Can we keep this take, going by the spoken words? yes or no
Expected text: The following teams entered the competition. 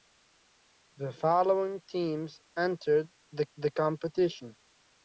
no